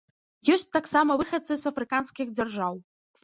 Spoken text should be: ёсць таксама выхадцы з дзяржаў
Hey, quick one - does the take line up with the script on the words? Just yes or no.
no